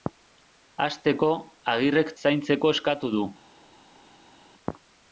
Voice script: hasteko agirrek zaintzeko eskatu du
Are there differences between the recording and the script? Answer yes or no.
no